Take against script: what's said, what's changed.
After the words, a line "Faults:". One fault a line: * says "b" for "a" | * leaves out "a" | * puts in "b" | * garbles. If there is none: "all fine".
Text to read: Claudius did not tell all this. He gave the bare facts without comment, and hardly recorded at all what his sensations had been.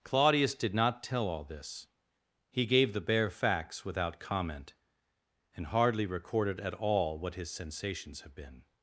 Claudius did not tell all this. He gave the bare facts without comment, and hardly recorded at all what his sensations have been.
Faults:
* says "have" for "had"